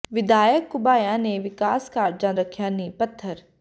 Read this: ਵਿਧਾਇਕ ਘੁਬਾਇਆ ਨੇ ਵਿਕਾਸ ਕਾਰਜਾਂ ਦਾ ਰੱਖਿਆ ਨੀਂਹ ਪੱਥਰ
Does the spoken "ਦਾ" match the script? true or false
false